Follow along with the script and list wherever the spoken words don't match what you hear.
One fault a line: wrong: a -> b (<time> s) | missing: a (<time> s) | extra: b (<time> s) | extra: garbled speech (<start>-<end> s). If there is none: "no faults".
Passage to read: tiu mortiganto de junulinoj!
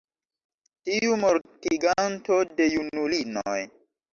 no faults